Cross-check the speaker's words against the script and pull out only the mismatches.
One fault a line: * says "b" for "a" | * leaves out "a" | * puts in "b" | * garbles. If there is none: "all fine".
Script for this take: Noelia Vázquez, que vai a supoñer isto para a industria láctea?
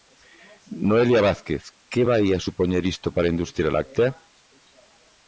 all fine